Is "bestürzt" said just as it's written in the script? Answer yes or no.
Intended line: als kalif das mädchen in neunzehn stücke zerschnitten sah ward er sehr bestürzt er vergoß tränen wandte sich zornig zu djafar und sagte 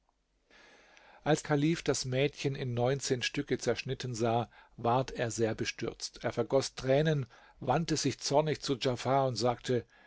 yes